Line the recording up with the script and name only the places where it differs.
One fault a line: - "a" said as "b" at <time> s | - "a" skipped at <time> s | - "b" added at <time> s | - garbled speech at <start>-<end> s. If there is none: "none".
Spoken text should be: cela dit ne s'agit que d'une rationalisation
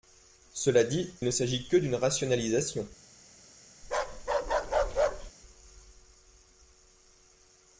none